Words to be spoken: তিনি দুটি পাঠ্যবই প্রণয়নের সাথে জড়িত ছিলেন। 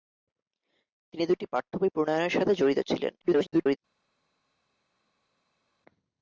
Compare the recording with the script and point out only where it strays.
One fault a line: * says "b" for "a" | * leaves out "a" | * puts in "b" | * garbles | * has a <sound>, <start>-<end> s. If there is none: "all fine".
* garbles